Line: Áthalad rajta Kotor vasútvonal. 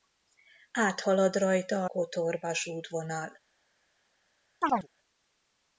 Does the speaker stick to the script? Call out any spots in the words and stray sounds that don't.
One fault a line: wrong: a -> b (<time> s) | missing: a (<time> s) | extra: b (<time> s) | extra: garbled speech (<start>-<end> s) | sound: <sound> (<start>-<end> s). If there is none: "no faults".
sound: chirp (4.6-4.9 s)